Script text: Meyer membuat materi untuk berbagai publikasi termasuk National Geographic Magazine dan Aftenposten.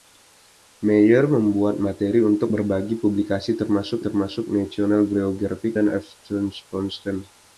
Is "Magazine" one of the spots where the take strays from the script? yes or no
yes